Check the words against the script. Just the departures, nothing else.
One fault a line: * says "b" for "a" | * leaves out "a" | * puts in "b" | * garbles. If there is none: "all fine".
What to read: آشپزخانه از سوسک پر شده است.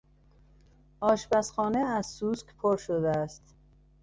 all fine